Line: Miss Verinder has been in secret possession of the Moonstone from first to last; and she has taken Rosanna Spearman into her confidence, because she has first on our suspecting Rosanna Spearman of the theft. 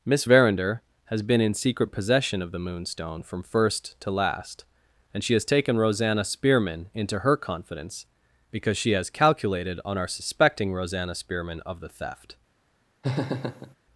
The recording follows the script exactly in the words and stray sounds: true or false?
false